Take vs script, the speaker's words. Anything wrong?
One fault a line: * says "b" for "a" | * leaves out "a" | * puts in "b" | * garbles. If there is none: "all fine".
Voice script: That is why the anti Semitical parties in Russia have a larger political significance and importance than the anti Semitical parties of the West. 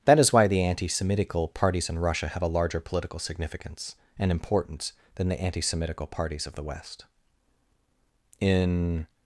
* puts in "In"